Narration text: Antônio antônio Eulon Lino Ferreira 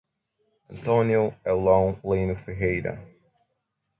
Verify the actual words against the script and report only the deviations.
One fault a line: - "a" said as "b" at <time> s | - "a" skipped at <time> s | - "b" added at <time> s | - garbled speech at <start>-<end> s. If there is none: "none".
- "antônio" skipped at 1.3 s